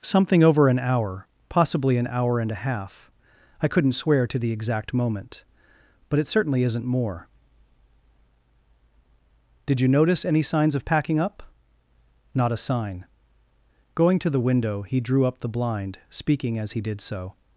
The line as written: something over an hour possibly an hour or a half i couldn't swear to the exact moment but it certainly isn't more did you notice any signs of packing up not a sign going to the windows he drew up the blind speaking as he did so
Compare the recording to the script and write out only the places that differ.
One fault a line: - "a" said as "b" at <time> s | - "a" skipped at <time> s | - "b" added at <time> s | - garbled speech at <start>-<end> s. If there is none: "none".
- "or" said as "and" at 2.4 s
- "windows" said as "window" at 14.5 s